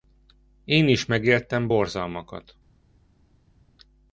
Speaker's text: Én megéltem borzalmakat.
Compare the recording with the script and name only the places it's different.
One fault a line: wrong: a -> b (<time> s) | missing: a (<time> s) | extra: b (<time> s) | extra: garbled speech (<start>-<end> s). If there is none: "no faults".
extra: is (0.9 s)